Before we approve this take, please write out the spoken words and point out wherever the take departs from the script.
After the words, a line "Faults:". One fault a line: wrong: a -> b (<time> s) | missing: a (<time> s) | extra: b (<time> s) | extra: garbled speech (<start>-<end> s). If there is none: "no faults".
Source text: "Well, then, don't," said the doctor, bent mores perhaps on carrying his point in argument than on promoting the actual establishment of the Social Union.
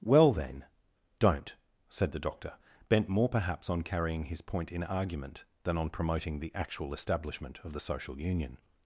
"Well, then, don't," said the doctor, bent more perhaps on carrying his point in argument than on promoting the actual establishment of the Social Union.
Faults:
wrong: mores -> more (3.1 s)